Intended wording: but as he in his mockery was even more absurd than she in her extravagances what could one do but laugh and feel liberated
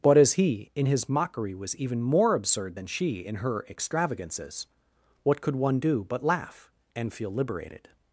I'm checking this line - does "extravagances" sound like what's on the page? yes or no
yes